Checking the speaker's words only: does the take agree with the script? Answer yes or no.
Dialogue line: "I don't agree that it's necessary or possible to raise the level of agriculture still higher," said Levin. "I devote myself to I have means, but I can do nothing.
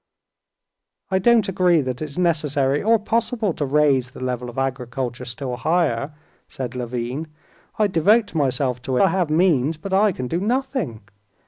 yes